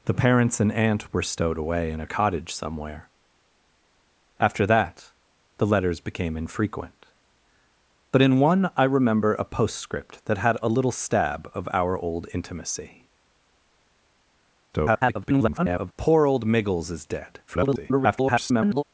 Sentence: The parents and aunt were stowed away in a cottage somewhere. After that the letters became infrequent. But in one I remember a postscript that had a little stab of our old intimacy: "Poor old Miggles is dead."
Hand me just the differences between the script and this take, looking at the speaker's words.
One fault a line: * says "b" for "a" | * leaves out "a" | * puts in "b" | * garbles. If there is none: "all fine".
* garbles
* garbles